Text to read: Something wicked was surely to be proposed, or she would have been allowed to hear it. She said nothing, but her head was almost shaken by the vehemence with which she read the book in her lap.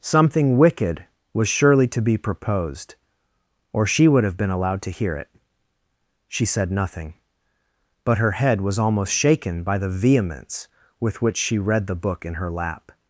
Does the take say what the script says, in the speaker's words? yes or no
yes